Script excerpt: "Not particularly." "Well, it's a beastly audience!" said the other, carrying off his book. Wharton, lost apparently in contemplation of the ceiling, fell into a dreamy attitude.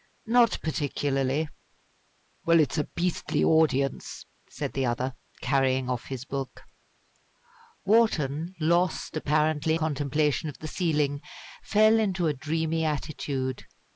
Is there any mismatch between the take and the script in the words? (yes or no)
yes